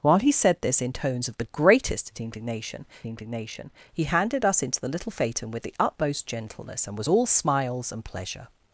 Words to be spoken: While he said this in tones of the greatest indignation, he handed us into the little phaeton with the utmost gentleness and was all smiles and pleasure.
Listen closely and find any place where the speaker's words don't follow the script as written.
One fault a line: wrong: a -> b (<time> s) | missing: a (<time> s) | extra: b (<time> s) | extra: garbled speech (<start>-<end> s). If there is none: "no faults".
extra: indignation (3.0 s)